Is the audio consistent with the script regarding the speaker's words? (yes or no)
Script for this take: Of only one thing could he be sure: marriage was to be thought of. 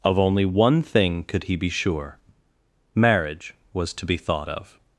yes